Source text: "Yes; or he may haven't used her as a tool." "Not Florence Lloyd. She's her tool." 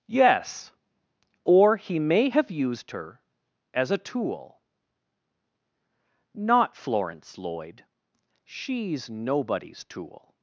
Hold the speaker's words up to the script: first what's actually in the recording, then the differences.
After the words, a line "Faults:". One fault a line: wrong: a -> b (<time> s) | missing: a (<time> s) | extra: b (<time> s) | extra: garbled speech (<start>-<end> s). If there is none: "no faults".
"Yes; or he may have used her as a tool." "Not Florence Lloyd. She's nobody's tool."
Faults:
wrong: haven't -> have (2.3 s)
wrong: her -> nobody's (9.1 s)